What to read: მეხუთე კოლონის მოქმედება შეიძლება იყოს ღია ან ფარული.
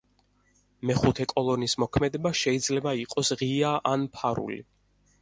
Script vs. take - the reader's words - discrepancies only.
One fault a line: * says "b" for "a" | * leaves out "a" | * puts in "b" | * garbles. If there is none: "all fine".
all fine